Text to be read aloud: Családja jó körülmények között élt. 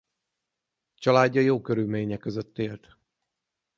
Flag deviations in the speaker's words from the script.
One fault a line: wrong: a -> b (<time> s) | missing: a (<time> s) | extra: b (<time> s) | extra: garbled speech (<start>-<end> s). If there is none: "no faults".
no faults